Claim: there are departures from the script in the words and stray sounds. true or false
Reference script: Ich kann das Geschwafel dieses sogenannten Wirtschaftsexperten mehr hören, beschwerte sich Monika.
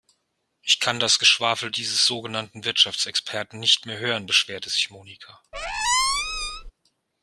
true